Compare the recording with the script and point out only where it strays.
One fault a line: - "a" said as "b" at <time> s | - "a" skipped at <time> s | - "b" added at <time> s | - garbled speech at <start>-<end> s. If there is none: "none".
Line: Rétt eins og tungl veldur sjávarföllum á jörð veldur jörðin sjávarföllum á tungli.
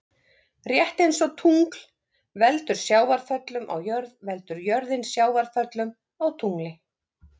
none